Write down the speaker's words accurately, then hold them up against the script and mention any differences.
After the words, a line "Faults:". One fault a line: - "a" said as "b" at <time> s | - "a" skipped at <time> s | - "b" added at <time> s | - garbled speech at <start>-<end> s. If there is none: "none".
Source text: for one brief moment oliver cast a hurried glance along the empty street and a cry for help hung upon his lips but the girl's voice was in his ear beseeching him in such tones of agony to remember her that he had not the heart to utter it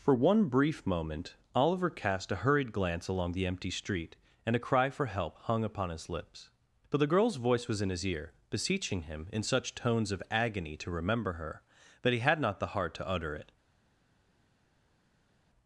for one brief moment oliver cast a hurried glance along the empty street and a cry for help hung upon his lips but the girl's voice was in his ear beseeching him in such tones of agony to remember her that he had not the heart to utter it
Faults:
none